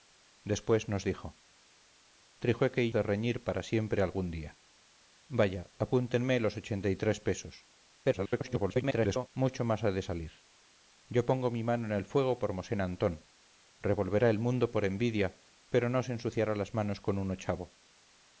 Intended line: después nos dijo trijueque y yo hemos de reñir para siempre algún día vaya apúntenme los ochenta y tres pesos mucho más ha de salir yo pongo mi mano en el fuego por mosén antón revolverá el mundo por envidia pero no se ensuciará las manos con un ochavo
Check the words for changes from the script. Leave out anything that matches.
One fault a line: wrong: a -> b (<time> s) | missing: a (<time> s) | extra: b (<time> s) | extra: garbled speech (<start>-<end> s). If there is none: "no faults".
missing: yo hemos (2.9 s)
extra: garbled speech (8.0-9.3 s)